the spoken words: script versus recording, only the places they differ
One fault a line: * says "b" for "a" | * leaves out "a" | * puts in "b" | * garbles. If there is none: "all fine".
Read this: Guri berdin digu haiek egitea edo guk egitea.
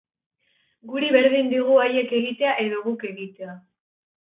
all fine